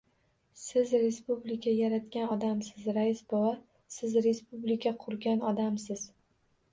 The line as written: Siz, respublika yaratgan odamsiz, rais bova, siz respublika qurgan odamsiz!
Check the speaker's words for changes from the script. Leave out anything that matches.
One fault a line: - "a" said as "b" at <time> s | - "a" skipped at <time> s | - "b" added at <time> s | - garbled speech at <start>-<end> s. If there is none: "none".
none